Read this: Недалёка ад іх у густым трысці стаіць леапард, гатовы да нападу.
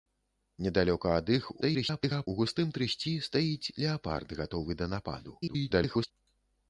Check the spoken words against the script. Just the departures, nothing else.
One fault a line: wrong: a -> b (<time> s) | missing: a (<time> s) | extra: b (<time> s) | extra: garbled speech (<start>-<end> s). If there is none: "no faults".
extra: garbled speech (1.6-2.3 s)
extra: garbled speech (5.4-6.1 s)